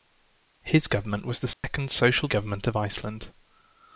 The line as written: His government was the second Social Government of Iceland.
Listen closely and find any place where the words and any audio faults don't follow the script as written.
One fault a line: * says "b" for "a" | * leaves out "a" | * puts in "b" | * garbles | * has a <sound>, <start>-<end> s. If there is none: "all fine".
* has a dropout, 1.5-1.6 s